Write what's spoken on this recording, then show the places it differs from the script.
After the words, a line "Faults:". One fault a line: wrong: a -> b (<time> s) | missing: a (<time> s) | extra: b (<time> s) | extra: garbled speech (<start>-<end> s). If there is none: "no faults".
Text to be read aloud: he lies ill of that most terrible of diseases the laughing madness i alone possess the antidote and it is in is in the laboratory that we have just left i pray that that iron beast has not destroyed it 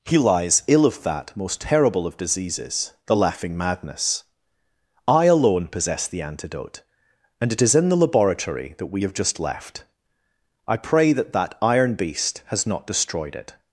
he lies ill of that most terrible of diseases the laughing madness i alone possess the antidote and it is in the laboratory that we have just left i pray that that iron beast has not destroyed it
Faults:
missing: is in (7.9 s)